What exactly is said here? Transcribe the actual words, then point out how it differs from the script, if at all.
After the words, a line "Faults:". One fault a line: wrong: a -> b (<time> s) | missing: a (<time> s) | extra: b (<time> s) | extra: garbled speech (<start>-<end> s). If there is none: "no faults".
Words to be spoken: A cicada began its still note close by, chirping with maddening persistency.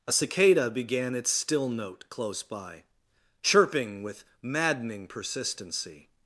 A cicada began its still note close by, chirping with maddening persistency.
Faults:
no faults